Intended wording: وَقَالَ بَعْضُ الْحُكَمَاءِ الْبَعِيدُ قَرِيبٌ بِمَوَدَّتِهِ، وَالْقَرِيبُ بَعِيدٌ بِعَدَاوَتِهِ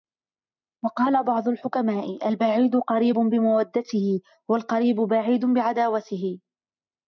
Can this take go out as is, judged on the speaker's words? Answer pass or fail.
pass